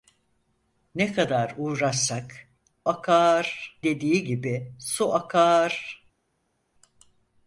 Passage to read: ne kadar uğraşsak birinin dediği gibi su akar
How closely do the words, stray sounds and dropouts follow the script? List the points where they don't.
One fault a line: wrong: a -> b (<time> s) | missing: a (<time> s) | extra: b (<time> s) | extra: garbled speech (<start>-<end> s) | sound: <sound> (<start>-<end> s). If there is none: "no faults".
wrong: birinin -> akar (2.9 s)